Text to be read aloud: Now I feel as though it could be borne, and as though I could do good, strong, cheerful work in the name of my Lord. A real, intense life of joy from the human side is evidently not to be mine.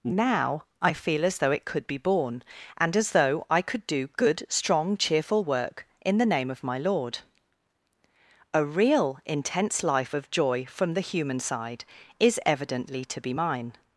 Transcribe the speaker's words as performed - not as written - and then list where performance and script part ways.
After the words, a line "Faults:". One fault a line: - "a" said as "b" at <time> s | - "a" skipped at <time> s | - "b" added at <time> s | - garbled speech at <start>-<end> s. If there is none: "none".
Now I feel as though it could be borne, and as though I could do good, strong, cheerful work in the name of my Lord. A real, intense life of joy from the human side is evidently to be mine.
Faults:
- "not" skipped at 13.0 s